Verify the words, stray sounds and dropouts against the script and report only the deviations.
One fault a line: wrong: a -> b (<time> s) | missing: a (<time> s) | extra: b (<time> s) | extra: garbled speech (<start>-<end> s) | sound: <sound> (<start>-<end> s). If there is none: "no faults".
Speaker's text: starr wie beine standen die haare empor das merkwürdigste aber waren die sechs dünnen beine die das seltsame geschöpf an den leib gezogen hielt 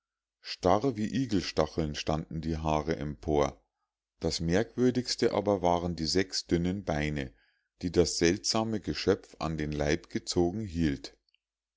wrong: beine -> igelstacheln (1.1 s)